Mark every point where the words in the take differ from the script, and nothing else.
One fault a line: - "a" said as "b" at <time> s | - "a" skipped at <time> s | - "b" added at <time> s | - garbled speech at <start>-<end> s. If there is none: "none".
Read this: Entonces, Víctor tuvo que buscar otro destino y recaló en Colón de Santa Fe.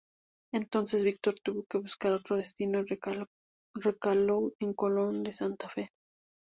none